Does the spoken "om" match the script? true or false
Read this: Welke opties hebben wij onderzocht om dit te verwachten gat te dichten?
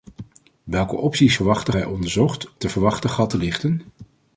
false